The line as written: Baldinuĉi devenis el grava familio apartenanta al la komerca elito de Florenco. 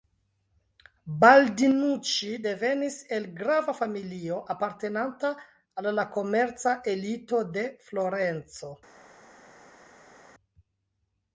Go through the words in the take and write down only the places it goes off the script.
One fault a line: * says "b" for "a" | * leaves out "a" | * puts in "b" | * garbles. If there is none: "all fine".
all fine